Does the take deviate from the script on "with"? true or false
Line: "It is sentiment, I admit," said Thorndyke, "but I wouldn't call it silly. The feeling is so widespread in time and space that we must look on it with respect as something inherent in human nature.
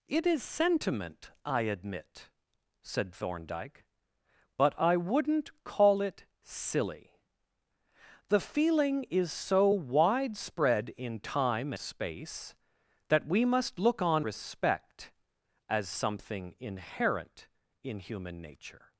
true